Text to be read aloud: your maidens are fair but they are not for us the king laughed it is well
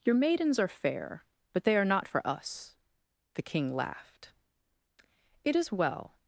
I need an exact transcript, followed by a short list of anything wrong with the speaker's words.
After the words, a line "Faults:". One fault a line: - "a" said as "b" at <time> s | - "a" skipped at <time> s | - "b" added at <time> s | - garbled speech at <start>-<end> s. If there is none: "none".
your maidens are fair but they are not for us the king laughed it is well
Faults:
none